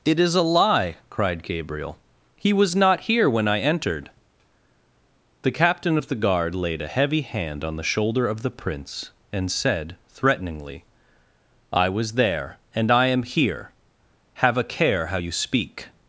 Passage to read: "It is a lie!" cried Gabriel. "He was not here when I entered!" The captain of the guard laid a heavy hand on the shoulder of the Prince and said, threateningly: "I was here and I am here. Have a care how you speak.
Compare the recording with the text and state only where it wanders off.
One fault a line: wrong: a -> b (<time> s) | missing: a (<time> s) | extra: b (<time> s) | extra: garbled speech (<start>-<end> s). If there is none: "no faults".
wrong: here -> there (12.1 s)